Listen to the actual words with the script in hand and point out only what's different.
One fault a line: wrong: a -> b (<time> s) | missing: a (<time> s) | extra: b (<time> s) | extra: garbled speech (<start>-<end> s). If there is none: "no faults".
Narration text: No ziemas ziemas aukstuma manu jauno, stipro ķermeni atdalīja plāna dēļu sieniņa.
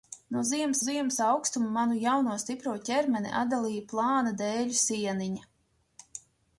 no faults